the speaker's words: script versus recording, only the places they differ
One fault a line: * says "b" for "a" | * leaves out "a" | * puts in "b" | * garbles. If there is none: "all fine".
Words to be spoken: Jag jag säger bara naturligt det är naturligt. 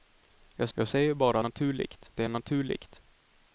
all fine